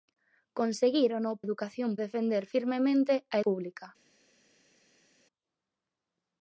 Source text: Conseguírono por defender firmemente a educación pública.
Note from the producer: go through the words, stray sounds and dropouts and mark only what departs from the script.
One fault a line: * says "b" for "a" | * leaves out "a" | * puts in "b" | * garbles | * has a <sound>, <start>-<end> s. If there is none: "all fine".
* says "educación" for "por"
* leaves out "educación"